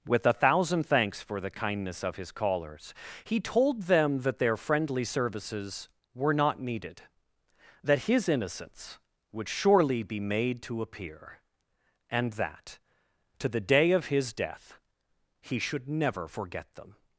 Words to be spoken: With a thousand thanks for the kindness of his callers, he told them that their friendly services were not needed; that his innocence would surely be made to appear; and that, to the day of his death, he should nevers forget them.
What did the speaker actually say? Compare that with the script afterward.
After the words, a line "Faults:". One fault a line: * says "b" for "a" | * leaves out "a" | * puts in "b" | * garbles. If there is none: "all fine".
With a thousand thanks for the kindness of his callers, he told them that their friendly services were not needed; that his innocence would surely be made to appear; and that, to the day of his death, he should never forget them.
Faults:
* says "never" for "nevers"